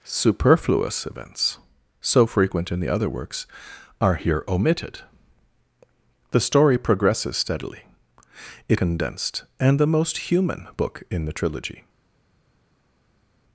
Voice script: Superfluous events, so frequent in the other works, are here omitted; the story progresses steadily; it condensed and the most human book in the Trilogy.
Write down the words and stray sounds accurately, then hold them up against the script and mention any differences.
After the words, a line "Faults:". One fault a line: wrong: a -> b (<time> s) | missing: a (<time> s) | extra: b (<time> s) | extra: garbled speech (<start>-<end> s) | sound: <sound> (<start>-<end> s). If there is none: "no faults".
Superfluous events, so frequent in the other works, are here omitted; the story progresses steadily; it condensed and the most human book in the Trilogy.
Faults:
no faults